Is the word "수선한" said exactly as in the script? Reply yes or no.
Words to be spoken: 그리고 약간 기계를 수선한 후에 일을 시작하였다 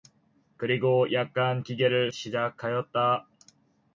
no